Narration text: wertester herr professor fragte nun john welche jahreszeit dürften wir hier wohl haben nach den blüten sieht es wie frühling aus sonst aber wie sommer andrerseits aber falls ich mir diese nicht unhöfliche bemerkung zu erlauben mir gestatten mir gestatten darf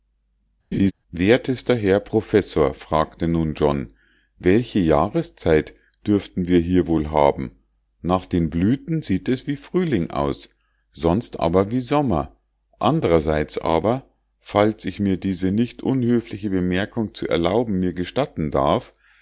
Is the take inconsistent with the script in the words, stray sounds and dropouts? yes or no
yes